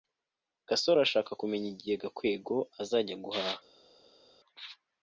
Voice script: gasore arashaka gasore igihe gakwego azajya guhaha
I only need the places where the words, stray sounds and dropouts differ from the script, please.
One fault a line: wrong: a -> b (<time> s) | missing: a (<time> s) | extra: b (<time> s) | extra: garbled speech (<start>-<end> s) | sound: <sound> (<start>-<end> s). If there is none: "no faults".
wrong: gasore -> kumenya (1.4 s)